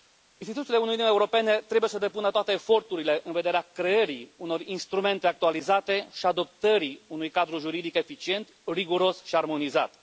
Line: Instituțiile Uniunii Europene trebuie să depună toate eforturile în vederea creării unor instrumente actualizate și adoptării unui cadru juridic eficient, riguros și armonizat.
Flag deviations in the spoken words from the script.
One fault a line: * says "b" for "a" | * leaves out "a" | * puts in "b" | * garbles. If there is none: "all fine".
all fine